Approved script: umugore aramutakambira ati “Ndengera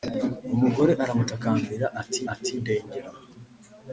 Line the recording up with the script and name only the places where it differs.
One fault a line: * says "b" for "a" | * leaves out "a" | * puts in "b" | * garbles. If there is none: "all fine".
* puts in "ati"